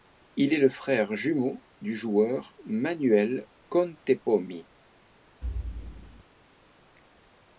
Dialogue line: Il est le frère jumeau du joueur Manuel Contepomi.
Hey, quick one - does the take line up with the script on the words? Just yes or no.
yes